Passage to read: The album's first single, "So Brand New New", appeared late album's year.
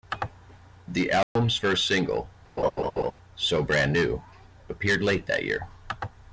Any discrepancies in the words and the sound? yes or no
yes